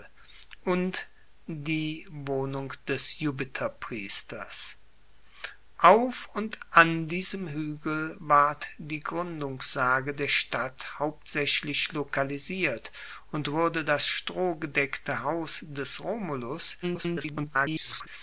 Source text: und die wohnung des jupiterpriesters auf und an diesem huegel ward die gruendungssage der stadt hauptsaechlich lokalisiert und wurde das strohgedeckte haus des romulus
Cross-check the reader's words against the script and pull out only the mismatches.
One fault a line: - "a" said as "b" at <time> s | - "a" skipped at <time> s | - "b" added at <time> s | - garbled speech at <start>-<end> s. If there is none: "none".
- garbled speech at 16.8-18.1 s